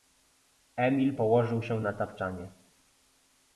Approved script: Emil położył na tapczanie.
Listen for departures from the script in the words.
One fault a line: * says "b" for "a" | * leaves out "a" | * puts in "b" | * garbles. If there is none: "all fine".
* puts in "się"